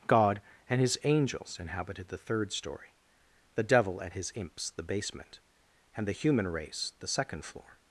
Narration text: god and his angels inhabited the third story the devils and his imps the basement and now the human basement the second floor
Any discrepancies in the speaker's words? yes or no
yes